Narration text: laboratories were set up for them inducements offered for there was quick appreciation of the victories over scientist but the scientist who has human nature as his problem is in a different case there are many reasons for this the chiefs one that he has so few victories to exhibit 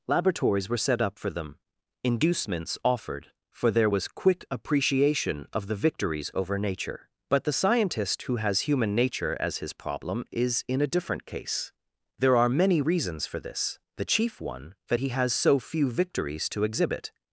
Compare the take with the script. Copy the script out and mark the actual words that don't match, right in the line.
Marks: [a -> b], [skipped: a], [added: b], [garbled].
laboratories were set up for them inducements offered for there was quick appreciation of the victories over [scientist -> nature] but the scientist who has human nature as his problem is in a different case there are many reasons for this the [chiefs -> chief] one that he has so few victories to exhibit